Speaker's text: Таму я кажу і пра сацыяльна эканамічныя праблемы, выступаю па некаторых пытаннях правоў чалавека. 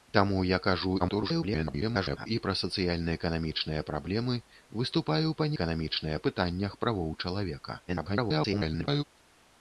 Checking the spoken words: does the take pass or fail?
fail